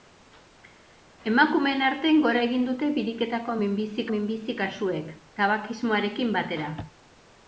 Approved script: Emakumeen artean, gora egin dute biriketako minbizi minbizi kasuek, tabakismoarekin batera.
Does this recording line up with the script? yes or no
yes